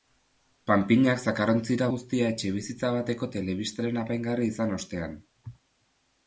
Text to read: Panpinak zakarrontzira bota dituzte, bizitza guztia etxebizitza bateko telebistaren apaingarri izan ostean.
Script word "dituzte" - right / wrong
wrong